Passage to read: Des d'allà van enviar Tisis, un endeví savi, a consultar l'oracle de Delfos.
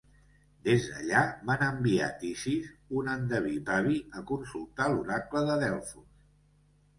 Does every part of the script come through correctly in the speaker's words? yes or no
yes